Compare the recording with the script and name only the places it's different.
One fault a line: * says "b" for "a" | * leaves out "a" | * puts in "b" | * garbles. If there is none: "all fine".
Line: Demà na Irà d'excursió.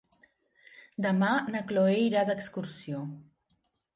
* puts in "Cloè"